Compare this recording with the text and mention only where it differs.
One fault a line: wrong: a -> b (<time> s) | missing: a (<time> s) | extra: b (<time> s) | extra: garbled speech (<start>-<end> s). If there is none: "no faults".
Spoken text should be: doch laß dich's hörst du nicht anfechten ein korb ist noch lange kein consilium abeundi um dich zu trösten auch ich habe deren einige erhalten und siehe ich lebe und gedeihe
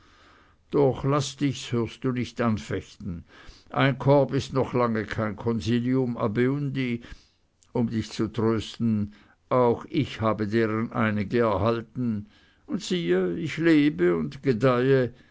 no faults